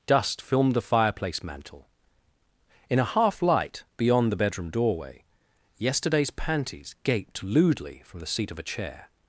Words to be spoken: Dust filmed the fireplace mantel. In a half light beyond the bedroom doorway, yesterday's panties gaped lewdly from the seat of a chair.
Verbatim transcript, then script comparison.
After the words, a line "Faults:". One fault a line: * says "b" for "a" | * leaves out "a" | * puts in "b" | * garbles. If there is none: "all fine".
Dust filmed the fireplace mantel. In a half light beyond the bedroom doorway, yesterday's panties gaped lewdly from the seat of a chair.
Faults:
all fine